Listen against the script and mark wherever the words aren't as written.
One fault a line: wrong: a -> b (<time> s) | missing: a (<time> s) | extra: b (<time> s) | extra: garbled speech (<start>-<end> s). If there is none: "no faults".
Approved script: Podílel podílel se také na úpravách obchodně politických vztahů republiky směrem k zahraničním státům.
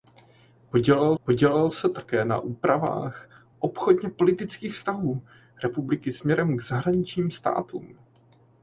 no faults